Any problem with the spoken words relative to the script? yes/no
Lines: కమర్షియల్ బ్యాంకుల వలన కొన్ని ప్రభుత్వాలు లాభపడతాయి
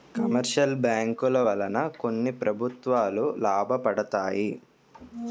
no